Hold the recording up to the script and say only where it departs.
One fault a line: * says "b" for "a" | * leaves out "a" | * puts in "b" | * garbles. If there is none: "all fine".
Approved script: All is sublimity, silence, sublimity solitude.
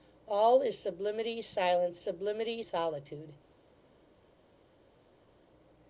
all fine